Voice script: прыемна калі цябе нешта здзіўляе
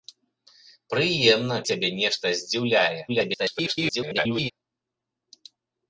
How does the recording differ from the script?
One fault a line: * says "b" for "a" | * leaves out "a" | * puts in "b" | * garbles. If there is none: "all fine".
* leaves out "калі"
* garbles